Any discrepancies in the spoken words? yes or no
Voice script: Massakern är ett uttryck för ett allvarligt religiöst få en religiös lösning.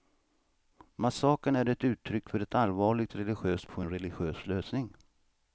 no